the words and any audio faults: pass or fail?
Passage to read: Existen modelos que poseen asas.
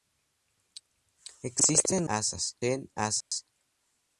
fail